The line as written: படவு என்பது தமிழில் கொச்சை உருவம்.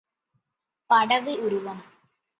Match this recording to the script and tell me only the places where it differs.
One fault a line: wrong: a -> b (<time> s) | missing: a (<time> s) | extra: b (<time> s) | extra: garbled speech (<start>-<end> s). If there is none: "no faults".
missing: என்பது தமிழில் கொச்சை (1.3 s)